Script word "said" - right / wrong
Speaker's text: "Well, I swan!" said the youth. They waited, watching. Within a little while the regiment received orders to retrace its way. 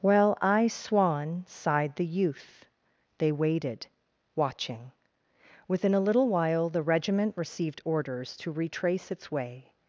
wrong